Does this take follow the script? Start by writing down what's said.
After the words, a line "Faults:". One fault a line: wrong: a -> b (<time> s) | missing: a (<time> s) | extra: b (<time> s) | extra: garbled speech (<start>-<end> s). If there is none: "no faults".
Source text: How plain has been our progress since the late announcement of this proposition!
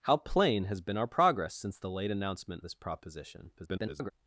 How plain has been our progress since the late announcement this proposition! [garbled]
Faults:
missing: of (2.6 s)
extra: garbled speech (3.6-4.1 s)